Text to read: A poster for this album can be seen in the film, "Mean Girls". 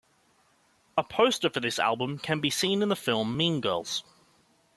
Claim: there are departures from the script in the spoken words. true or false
false